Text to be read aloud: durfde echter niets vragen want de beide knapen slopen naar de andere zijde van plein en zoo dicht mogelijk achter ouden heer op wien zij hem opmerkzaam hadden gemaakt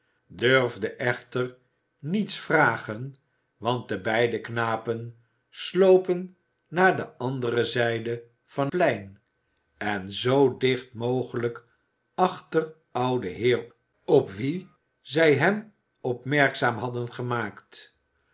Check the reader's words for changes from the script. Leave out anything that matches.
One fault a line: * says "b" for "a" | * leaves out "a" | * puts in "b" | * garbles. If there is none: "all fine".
all fine